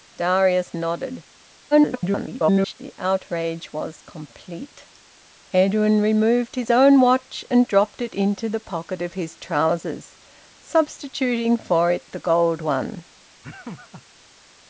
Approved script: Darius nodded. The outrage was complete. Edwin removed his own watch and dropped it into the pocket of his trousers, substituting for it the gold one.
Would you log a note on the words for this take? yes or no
yes